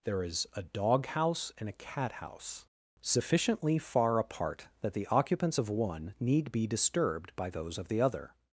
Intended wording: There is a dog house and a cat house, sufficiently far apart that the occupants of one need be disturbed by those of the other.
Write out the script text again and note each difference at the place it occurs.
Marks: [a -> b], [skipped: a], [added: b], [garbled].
There is a dog house and a cat house, sufficiently far apart that the occupants of one need be disturbed by those of the other.